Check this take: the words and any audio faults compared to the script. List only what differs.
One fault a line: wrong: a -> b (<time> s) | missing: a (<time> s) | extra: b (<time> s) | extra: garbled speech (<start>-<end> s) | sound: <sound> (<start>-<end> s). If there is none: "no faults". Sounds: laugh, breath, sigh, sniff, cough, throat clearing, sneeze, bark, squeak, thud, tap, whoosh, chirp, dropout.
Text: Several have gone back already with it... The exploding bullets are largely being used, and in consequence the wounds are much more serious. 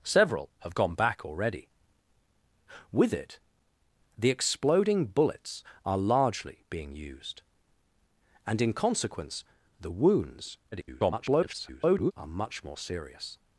extra: garbled speech (10.7-12.1 s)